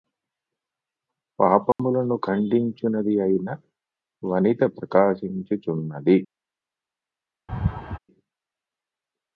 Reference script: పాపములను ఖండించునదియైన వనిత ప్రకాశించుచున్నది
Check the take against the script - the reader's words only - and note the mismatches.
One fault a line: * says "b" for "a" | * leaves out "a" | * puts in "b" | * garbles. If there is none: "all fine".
all fine